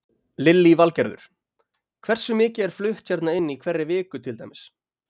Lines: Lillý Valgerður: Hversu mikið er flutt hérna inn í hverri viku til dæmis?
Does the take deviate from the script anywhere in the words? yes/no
no